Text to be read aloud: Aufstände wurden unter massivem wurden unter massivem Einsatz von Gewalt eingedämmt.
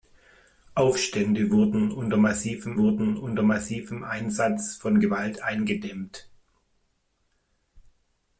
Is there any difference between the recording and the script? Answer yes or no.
no